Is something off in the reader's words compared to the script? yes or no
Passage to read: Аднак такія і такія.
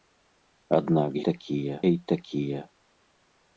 no